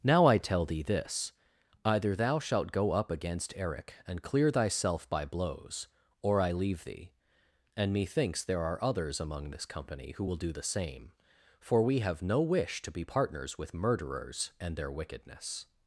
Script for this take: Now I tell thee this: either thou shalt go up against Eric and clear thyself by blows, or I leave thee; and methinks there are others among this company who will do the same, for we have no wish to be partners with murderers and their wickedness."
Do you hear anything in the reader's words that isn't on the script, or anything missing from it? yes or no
no